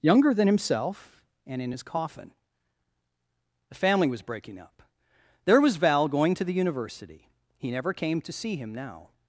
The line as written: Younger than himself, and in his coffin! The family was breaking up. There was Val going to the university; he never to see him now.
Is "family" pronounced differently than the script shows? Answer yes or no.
no